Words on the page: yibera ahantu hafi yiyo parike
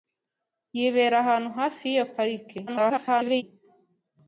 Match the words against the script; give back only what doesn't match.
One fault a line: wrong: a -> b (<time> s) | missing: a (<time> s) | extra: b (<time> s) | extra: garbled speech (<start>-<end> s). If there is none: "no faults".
extra: garbled speech (2.7-3.4 s)